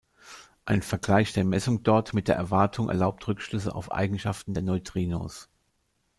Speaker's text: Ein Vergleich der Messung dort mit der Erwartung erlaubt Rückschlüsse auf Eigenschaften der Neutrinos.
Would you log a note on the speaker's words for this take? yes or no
no